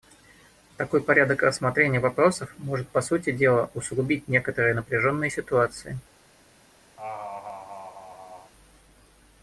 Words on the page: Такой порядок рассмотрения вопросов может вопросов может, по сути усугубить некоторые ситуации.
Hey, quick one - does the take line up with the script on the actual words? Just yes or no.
no